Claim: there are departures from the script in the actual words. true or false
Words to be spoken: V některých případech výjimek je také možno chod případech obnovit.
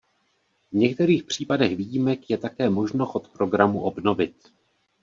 true